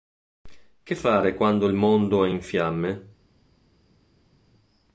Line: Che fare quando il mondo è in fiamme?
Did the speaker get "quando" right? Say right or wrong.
right